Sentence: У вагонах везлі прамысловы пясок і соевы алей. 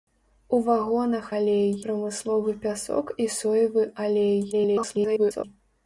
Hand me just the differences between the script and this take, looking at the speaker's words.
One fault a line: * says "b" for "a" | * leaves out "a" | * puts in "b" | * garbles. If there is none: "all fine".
* says "алей" for "везлі"
* garbles